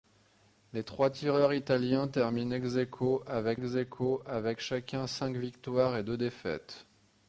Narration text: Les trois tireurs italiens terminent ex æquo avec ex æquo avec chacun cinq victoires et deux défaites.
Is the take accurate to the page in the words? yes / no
yes